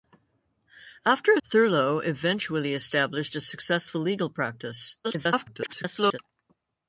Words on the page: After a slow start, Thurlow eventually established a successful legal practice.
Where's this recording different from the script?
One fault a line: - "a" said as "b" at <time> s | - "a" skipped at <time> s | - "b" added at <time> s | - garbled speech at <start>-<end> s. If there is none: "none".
- "slow start" skipped at 1.4 s
- garbled speech at 5.0-6.2 s